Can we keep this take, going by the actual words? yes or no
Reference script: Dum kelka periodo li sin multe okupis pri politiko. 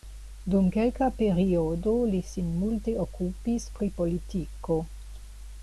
yes